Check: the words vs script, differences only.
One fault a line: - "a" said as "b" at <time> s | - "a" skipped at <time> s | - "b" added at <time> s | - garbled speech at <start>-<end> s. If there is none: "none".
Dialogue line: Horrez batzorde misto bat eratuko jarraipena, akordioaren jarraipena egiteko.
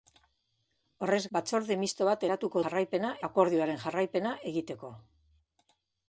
none